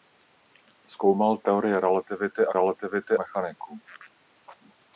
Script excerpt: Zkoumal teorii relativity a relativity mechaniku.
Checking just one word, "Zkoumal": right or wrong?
right